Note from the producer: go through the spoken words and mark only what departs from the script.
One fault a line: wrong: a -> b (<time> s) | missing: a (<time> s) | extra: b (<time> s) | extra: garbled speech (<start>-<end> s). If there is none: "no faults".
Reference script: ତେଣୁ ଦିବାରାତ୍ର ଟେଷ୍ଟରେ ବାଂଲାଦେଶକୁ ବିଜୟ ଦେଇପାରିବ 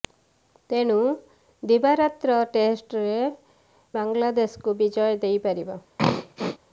no faults